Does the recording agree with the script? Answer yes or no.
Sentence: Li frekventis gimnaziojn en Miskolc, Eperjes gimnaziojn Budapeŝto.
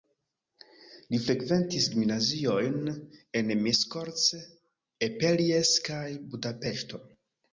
no